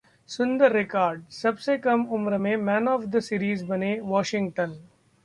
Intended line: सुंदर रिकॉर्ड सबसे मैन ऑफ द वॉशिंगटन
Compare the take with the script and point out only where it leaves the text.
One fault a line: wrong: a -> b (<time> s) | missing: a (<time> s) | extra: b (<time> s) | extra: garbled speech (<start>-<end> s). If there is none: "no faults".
extra: कम उम्र में (1.8 s)
extra: सीरीज बने (3.2 s)